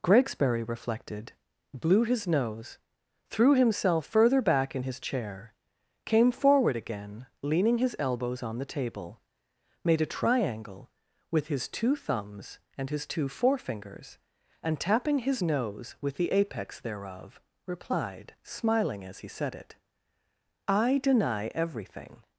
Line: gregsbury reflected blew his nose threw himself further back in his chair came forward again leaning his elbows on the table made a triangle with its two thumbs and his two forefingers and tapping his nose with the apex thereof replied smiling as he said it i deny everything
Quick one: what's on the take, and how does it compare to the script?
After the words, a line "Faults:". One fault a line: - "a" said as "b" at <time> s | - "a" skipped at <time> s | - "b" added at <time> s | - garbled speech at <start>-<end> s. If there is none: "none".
gregsbury reflected blew his nose threw himself further back in his chair came forward again leaning his elbows on the table made a triangle with his two thumbs and his two forefingers and tapping his nose with the apex thereof replied smiling as he said it i deny everything
Faults:
- "its" said as "his" at 11.5 s